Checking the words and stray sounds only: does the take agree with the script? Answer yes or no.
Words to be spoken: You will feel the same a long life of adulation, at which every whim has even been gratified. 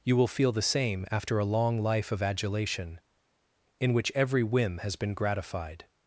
no